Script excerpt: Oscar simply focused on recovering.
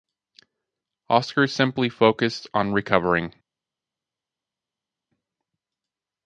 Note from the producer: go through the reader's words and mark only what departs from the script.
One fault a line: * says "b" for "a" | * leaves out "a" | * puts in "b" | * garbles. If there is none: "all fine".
all fine